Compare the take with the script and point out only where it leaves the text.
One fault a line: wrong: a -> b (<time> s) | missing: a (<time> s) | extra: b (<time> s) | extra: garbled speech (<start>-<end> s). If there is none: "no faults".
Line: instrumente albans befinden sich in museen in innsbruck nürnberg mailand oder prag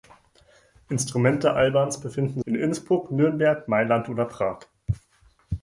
missing: sich in museen (2.4 s)